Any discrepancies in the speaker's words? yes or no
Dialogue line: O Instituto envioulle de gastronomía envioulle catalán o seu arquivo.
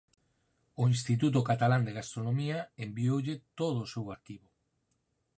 yes